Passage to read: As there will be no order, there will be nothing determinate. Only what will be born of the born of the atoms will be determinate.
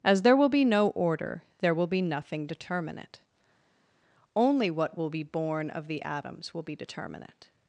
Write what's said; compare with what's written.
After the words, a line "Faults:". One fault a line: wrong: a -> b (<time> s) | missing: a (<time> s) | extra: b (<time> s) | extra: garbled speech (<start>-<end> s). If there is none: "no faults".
As there will be no order, there will be nothing determinate. Only what will be born of the atoms will be determinate.
Faults:
missing: born of the (6.0 s)